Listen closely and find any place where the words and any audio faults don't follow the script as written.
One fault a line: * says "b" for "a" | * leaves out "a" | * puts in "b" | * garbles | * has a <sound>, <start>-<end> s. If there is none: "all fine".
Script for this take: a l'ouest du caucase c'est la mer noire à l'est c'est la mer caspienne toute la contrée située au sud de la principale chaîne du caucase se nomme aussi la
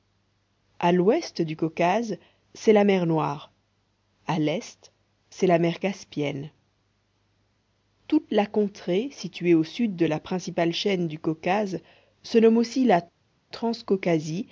all fine